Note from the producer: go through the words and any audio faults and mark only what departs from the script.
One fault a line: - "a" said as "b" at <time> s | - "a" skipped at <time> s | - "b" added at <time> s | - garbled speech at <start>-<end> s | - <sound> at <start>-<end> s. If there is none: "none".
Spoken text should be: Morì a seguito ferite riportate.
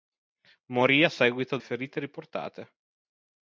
none